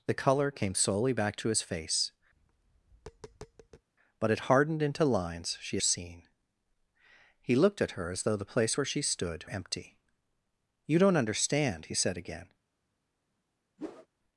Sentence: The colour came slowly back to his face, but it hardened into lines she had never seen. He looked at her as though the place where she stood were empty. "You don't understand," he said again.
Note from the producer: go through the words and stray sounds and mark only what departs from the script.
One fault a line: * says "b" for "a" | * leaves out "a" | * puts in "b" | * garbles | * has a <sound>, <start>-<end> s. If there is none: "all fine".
* has a tap, 2.3-3.9 s
* leaves out "had never"
* leaves out "were"
* has a whoosh, 13.8-14.1 s